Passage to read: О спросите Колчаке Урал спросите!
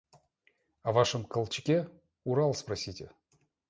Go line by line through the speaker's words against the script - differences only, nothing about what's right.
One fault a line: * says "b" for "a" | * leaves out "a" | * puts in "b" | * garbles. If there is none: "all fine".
* says "вашем" for "спросите"